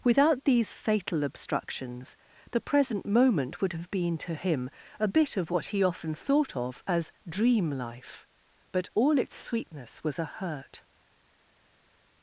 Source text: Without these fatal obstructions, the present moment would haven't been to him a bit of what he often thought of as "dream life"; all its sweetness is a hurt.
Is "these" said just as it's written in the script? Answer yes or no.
yes